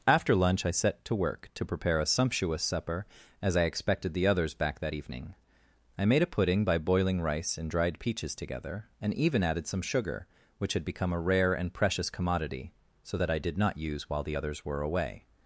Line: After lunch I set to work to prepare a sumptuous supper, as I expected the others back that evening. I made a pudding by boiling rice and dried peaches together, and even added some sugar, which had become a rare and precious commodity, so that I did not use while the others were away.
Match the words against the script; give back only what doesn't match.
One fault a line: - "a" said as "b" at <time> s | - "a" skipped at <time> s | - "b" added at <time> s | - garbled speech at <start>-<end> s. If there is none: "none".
none